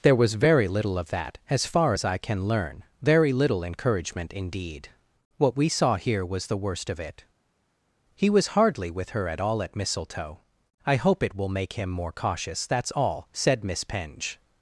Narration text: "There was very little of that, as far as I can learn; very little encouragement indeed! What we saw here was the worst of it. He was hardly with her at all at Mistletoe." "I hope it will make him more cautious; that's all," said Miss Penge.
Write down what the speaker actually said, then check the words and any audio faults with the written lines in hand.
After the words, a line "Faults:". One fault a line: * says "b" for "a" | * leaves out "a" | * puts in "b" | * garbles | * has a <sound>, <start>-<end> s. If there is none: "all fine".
"There was very little of that, as far as I can learn; very little encouragement indeed! What we saw here was the worst of it. He was hardly with her at all at Mistletoe." "I hope it will make him more cautious; that's all," said Miss Penge.
Faults:
all fine